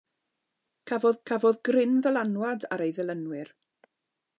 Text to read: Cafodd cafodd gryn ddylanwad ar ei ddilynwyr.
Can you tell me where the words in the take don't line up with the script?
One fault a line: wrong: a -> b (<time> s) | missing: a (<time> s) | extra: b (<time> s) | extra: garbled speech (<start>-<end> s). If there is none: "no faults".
no faults